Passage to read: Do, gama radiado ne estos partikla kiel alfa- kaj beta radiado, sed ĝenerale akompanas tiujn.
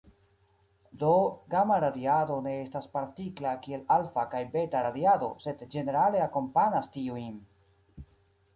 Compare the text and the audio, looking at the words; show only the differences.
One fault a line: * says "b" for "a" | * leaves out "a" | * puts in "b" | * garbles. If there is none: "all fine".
* says "estas" for "estos"